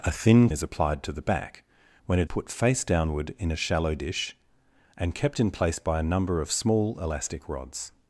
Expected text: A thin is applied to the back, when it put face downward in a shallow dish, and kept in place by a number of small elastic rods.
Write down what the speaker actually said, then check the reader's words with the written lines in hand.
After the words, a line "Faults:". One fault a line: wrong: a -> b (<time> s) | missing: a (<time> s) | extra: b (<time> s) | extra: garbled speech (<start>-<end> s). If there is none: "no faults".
A thin is applied to the back, when it put face downward in a shallow dish, and kept in place by a number of small elastic rods.
Faults:
no faults